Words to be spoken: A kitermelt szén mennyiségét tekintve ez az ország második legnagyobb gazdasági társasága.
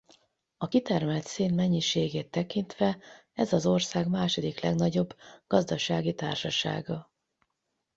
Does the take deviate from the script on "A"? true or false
false